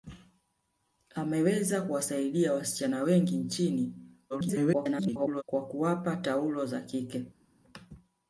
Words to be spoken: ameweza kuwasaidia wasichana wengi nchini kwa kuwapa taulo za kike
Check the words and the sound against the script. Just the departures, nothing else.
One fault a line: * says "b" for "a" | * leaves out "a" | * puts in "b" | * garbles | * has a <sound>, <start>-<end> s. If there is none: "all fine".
* garbles